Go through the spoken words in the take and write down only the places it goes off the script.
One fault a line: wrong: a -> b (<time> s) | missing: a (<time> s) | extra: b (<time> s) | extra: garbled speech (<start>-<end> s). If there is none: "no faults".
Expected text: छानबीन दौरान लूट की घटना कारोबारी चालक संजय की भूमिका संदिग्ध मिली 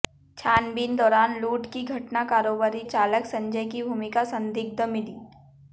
no faults